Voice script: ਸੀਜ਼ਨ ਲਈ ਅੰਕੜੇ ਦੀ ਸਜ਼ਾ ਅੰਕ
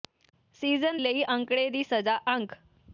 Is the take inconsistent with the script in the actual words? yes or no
no